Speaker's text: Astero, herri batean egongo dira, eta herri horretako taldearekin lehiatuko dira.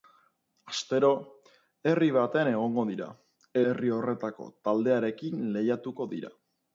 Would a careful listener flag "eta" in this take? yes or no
yes